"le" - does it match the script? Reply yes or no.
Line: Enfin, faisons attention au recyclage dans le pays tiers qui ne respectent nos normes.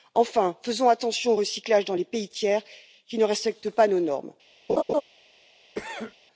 no